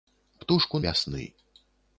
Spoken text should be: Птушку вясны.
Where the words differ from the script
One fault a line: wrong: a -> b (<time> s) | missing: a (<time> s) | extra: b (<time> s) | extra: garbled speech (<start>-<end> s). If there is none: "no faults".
no faults